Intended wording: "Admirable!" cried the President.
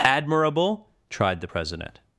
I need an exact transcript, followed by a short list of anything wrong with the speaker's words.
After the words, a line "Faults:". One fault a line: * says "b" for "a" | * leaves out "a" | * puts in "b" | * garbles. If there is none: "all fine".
"Admirable!" tried the President.
Faults:
* says "tried" for "cried"